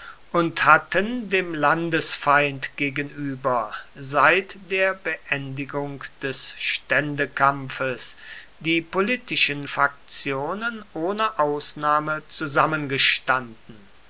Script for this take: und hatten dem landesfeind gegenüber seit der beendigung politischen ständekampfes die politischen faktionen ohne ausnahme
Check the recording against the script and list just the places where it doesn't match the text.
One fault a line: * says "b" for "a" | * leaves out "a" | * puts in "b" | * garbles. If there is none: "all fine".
* says "des" for "politischen"